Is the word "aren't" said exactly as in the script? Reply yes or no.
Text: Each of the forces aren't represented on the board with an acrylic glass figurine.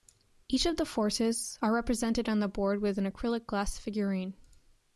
no